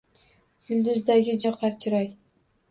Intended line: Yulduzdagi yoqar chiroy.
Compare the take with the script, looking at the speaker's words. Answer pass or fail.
pass